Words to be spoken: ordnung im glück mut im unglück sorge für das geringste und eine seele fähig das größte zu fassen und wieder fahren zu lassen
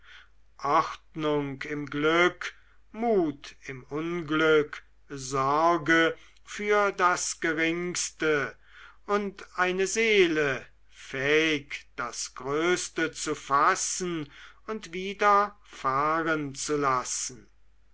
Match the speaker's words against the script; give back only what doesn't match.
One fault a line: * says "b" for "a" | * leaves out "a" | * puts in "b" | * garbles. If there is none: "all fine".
all fine